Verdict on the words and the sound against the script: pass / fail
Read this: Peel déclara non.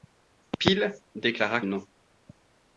pass